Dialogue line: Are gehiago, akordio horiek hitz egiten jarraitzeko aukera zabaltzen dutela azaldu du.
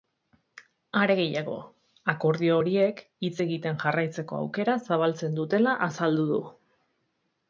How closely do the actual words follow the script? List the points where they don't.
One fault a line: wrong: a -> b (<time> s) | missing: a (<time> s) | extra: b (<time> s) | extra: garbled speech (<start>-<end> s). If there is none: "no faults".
no faults